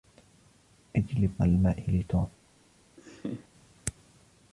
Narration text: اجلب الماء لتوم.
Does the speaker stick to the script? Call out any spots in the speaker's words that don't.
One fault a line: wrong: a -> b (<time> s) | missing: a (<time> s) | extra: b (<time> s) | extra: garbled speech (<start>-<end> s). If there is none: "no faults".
no faults